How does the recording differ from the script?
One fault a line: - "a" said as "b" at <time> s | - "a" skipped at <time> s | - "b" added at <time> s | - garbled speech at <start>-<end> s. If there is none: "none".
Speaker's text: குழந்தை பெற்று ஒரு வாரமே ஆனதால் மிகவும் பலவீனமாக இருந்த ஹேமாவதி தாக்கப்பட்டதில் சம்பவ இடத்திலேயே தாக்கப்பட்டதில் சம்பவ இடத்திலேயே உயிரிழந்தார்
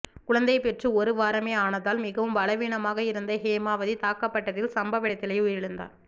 - "தாக்கப்பட்டதில் சம்பவ இடத்திலேயே" skipped at 5.4 s